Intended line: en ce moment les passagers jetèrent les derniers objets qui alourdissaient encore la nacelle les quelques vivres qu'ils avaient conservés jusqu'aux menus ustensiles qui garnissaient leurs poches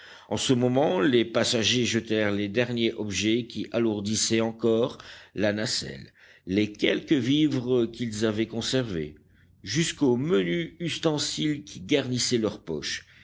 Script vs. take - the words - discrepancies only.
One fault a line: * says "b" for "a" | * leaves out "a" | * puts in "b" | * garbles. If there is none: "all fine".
all fine